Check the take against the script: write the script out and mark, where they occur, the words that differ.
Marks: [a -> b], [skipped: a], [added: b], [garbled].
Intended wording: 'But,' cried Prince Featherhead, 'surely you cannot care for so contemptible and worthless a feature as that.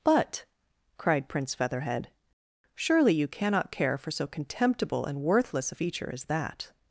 'But,' cried Prince Featherhead, 'surely you cannot care for so contemptible and worthless a feature as that.